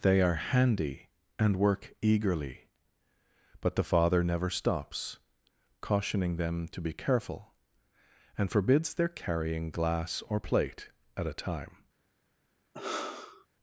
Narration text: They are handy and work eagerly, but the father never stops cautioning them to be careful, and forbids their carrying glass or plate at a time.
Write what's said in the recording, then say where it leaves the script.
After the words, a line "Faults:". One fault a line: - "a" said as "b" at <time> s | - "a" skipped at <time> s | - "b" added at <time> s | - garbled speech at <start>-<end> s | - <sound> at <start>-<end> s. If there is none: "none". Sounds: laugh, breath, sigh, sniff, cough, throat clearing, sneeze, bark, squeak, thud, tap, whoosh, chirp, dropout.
They are handy and work eagerly, but the father never stops cautioning them to be careful, and forbids their carrying glass or plate at a time.
Faults:
- sigh at 12.7-13.5 s